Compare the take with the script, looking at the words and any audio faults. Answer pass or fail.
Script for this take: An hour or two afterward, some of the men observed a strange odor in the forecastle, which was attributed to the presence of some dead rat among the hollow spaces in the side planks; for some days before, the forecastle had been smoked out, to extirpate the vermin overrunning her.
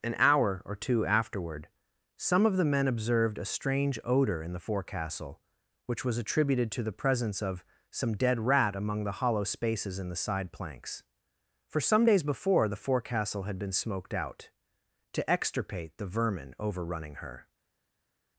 pass